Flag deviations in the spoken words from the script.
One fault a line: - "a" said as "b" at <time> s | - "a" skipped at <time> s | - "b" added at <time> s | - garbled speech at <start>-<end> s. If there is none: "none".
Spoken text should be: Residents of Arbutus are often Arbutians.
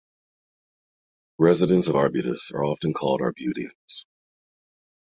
- "called" added at 2.9 s